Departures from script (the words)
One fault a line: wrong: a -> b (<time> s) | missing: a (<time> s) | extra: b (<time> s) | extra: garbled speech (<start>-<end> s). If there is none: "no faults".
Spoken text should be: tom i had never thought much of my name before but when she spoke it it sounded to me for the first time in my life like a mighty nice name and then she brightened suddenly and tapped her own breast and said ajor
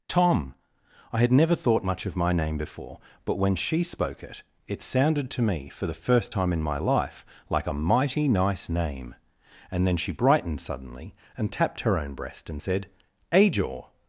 no faults